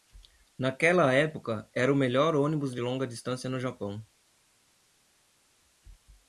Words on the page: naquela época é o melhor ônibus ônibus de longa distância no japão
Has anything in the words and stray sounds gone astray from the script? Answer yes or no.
yes